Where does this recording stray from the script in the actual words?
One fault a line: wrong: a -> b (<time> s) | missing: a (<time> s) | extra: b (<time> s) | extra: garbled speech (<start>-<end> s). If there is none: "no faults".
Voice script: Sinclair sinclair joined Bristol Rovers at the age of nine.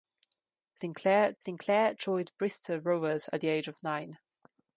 no faults